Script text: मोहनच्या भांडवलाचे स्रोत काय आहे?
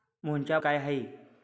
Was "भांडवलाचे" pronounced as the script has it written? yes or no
no